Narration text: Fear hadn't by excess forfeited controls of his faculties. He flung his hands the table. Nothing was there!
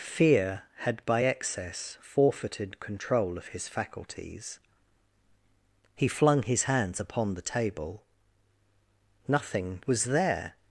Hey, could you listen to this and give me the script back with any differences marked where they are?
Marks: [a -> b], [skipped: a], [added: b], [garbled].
Fear [hadn't -> had] by excess forfeited [controls -> control] of his faculties. He flung his hands [added: upon] the table. Nothing was there!